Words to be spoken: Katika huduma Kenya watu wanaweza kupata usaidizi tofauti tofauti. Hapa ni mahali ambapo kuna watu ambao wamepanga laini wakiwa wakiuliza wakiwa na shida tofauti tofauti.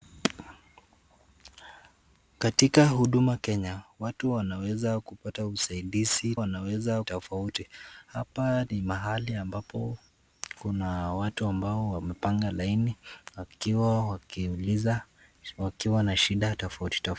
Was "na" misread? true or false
false